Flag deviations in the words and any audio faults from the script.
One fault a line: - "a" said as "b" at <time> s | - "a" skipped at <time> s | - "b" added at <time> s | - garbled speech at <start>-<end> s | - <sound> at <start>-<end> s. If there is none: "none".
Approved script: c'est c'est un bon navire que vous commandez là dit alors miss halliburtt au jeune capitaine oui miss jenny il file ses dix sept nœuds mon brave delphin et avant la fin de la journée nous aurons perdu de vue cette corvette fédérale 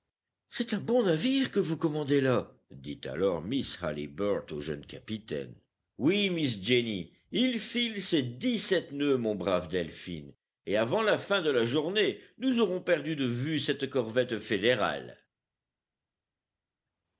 - "c'est" skipped at 0.7 s